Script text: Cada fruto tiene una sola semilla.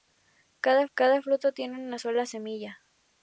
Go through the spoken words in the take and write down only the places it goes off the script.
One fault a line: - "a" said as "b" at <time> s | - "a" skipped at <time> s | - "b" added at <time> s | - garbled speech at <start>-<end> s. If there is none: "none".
- "cada" added at 0.9 s